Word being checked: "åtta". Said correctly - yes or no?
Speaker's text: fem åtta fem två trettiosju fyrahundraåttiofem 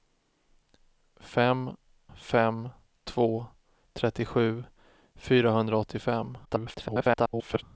no